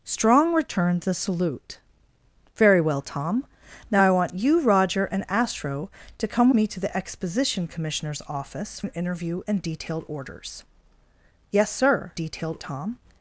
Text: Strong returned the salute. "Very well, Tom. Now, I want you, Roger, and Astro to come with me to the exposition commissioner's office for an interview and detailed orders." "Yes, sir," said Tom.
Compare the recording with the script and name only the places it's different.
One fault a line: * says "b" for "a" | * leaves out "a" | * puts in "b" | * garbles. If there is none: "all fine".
* leaves out "with"
* leaves out "for"
* says "detailed" for "said"